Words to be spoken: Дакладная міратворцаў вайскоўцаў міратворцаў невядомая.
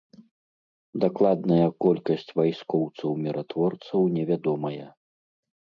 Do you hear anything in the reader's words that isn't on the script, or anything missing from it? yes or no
yes